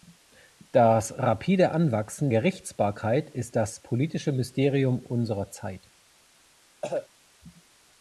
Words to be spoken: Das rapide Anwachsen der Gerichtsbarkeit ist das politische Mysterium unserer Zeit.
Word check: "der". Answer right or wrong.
wrong